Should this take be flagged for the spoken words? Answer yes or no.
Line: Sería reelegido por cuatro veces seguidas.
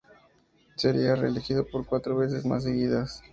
yes